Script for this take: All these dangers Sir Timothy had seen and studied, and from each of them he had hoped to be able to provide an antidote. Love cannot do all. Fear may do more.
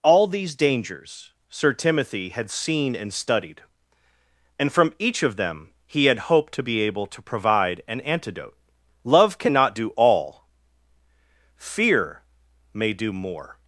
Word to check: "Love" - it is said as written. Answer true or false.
true